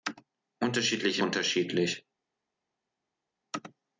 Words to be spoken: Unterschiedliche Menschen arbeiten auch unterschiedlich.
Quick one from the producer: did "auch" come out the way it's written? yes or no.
no